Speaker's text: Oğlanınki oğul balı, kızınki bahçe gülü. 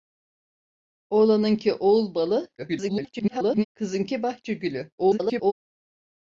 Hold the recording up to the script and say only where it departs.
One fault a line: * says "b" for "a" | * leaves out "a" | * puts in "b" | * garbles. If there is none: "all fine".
* garbles
* garbles